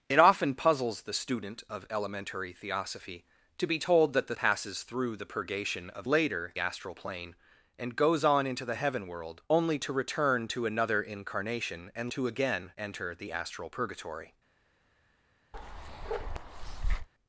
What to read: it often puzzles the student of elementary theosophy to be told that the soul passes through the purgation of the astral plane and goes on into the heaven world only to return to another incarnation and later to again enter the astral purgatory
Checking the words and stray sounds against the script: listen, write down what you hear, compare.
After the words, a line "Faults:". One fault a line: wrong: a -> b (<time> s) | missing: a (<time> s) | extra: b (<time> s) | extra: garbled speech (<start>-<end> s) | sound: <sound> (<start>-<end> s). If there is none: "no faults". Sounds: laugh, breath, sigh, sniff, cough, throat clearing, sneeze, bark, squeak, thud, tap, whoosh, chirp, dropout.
it often puzzles the student of elementary theosophy to be told that the passes through the purgation of later astral plane and goes on into the heaven world only to return to another incarnation and to again enter the astral purgatory
Faults:
missing: soul (4.4 s)
wrong: the -> later (6.1 s)
missing: later (12.1 s)
sound: bark (15.5-17.1 s)